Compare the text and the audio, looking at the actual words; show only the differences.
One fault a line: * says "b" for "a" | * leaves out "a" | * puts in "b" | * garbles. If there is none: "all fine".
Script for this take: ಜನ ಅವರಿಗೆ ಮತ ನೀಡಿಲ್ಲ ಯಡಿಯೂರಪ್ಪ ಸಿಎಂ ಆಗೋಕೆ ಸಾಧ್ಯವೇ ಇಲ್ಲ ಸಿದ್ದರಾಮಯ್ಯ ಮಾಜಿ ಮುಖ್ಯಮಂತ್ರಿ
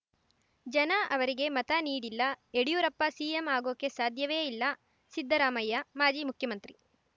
all fine